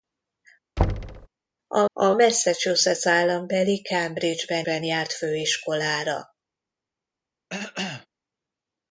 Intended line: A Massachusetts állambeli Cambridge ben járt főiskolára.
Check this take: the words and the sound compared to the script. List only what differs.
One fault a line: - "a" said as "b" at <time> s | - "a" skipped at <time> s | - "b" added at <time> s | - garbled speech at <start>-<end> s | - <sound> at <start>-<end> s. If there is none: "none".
- thud at 0.8-1.3 s
- "a" added at 1.9 s
- "ben" added at 4.6 s
- cough at 7.5-8.1 s